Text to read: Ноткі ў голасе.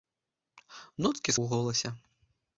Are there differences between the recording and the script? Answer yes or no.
no